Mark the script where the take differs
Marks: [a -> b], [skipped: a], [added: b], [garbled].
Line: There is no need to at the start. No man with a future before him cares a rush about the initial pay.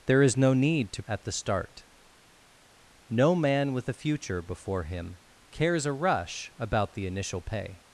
There is no need to at the start. No man with a future before him cares a rush about the initial pay.